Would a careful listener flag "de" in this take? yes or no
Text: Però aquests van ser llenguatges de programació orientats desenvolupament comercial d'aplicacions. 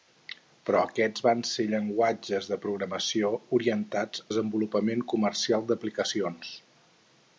no